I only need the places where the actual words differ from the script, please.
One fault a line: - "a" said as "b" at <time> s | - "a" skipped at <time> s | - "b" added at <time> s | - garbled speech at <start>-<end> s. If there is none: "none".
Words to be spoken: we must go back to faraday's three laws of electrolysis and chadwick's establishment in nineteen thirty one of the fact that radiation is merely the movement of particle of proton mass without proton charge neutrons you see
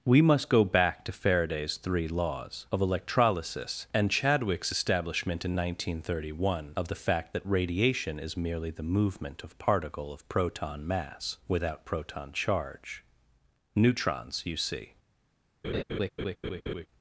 none